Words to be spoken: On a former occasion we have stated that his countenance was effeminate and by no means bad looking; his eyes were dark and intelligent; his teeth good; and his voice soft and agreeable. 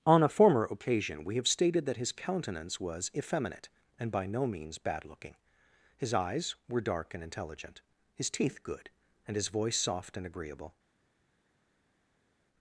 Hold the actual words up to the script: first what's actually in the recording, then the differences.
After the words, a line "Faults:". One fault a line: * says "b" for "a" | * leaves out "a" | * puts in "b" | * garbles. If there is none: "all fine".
On a former occasion we have stated that his countenance was effeminate and by no means bad looking; his eyes were dark and intelligent; his teeth good; and his voice soft and agreeable.
Faults:
all fine